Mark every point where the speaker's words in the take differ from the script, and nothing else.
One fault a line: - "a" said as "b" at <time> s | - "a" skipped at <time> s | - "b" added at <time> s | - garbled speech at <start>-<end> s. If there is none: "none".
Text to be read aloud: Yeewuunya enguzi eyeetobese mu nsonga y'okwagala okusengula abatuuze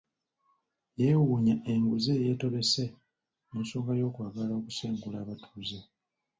none